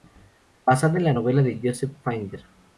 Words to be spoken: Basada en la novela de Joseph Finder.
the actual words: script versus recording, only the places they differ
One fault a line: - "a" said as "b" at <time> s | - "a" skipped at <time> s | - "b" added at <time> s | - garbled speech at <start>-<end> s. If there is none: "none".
none